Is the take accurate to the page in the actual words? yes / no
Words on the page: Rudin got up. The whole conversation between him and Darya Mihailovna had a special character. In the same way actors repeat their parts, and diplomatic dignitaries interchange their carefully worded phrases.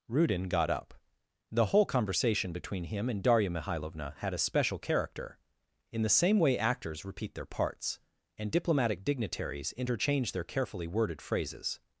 yes